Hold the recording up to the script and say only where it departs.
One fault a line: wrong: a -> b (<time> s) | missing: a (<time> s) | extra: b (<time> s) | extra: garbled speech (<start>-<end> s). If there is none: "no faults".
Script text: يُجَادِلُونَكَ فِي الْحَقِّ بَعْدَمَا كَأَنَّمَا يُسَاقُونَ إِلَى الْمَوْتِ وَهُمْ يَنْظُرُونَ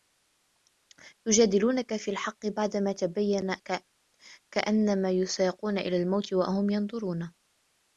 no faults